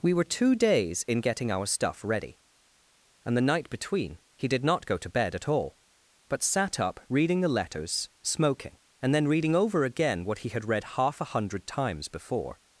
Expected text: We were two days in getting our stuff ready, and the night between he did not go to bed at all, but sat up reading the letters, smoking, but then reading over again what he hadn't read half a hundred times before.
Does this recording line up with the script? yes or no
no